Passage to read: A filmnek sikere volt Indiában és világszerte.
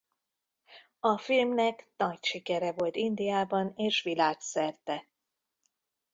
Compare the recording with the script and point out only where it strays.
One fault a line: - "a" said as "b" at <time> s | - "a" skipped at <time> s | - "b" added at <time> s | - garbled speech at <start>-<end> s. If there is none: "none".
- "nagy" added at 2.0 s